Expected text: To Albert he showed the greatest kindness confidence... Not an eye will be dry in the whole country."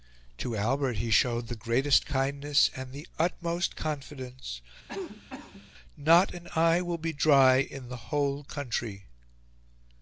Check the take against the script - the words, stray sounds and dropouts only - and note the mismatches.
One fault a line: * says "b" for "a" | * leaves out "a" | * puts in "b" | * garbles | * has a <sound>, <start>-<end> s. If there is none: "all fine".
* puts in "and the utmost"
* has a cough, 4.9-5.7 s